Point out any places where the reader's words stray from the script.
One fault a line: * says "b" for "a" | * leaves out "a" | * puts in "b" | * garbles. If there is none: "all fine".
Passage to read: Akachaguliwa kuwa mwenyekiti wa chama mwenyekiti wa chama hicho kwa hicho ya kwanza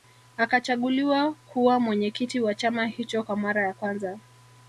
* leaves out "mwenyekiti wa chama"
* says "mara" for "hicho"